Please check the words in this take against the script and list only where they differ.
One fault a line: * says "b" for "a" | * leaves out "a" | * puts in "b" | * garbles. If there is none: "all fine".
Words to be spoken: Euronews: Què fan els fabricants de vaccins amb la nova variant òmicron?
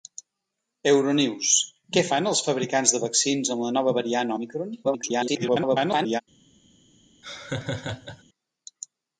* garbles